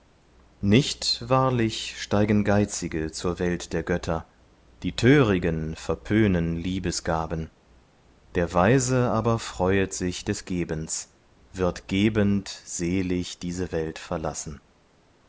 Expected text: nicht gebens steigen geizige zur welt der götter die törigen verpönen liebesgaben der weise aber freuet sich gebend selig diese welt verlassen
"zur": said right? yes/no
yes